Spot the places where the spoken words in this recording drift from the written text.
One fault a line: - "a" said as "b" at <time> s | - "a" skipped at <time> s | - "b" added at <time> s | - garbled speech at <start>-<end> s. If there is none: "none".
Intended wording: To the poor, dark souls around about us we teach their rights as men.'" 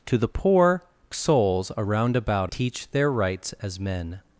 - "dark" skipped at 0.8 s
- "us we" skipped at 2.5 s